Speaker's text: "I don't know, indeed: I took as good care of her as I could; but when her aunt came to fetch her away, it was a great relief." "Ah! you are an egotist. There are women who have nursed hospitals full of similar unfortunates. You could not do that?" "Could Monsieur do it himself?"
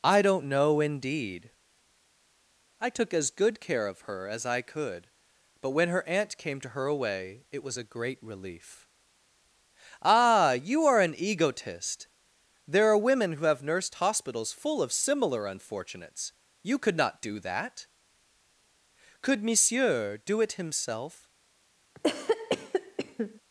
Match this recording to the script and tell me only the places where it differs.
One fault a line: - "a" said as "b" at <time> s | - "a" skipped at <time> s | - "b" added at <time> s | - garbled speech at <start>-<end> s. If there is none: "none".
- "fetch" skipped at 6.7 s